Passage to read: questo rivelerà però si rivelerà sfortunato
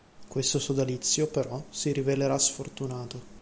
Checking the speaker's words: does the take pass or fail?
fail